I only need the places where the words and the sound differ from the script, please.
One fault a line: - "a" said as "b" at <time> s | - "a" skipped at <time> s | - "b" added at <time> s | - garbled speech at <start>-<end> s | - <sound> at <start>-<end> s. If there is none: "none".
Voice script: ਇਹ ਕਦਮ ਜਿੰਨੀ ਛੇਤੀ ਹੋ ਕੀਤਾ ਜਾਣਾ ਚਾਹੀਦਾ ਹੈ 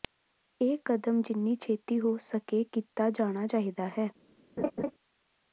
- "ਸਕੇ" added at 2.2 s
- laugh at 4.6-4.9 s